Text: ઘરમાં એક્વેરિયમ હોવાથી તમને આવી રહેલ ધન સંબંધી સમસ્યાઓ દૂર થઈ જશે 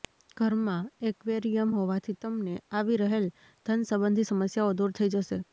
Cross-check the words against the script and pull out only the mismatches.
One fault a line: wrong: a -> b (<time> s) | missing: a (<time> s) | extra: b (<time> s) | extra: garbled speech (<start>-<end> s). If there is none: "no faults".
no faults